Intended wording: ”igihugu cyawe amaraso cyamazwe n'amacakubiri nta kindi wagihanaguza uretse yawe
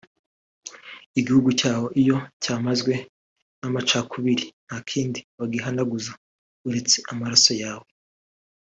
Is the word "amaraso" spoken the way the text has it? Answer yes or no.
no